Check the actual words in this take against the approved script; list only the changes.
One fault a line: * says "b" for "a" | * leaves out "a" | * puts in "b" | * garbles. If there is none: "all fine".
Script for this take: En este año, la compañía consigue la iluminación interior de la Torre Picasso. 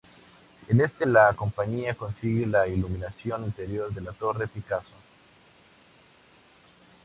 * leaves out "año"